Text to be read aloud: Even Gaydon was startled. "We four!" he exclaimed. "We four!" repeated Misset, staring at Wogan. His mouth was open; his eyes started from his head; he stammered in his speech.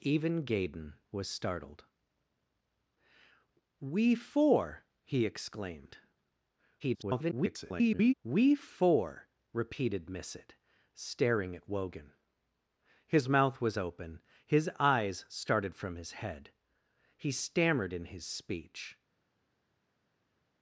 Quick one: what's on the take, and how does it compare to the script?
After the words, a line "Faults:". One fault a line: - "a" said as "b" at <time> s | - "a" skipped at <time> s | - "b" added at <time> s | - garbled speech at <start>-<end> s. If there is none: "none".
Even Gaydon was startled. "We four!" he exclaimed. [garbled] "We four!" repeated Misset, staring at Wogan. His mouth was open; his eyes started from his head; he stammered in his speech.
Faults:
- garbled speech at 6.8-8.1 s